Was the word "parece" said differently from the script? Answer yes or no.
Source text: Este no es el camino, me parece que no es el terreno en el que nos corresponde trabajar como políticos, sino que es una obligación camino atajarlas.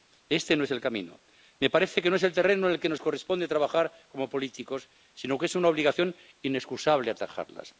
no